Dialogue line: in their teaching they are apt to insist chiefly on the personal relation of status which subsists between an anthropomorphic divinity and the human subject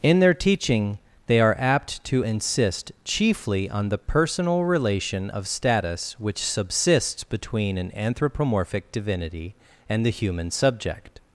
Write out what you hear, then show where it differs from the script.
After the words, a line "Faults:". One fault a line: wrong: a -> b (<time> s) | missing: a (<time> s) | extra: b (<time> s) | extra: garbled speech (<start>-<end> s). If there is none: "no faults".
in their teaching they are apt to insist chiefly on the personal relation of status which subsists between an anthropomorphic divinity and the human subject
Faults:
no faults